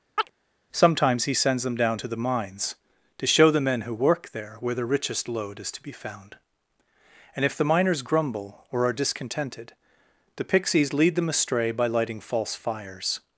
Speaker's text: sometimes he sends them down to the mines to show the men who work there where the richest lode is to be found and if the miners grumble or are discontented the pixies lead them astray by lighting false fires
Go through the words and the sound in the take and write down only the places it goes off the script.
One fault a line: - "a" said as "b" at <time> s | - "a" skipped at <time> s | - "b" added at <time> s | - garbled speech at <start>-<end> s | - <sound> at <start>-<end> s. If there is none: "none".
- chirp at 0.2-0.3 s